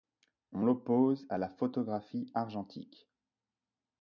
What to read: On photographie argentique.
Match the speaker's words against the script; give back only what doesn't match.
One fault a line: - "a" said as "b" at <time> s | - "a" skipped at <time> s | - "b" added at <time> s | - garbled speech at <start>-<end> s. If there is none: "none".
- "l'oppose à la" added at 0.6 s